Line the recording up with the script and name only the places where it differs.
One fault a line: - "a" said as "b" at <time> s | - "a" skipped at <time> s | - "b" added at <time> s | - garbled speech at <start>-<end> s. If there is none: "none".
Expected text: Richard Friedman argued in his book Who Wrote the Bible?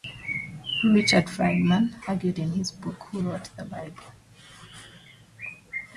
none